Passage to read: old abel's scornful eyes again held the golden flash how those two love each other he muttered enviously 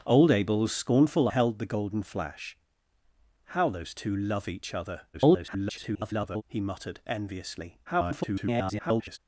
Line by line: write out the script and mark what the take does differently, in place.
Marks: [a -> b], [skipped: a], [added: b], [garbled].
old abel's scornful [skipped: eyes again] held the golden flash how those two love each other [garbled] he muttered enviously [garbled]